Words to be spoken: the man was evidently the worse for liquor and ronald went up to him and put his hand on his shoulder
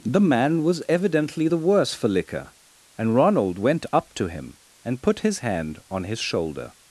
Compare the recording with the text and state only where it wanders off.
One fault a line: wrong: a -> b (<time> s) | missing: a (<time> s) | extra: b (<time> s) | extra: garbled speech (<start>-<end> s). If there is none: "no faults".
no faults